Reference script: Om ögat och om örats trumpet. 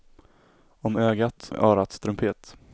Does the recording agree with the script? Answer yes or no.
no